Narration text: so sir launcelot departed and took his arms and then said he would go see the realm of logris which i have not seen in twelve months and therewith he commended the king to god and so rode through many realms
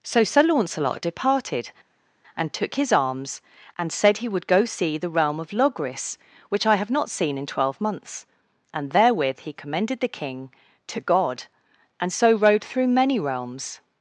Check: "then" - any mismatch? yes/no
yes